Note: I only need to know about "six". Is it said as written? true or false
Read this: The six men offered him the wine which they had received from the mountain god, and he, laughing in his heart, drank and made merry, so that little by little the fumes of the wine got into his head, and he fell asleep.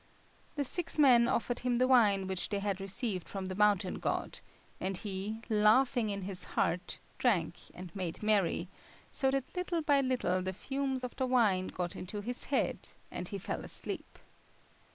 true